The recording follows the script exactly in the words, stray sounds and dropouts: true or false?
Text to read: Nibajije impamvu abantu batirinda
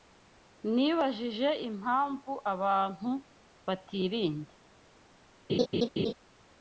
false